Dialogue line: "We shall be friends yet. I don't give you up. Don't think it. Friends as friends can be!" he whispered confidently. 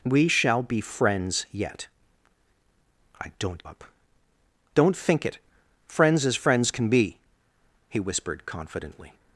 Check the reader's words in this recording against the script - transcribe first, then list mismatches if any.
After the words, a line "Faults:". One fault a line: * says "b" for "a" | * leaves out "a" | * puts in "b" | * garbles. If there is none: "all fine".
"We shall be friends yet. I don't up. Don't think it. Friends as friends can be!" he whispered confidently.
Faults:
* leaves out "give you"